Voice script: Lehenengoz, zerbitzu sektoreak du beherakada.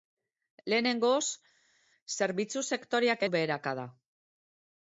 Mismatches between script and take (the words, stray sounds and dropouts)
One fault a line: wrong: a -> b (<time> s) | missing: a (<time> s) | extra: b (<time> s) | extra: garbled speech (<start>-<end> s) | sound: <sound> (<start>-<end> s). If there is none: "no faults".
no faults